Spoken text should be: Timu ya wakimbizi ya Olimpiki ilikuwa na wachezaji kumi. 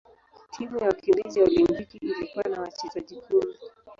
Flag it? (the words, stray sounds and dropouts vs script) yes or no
no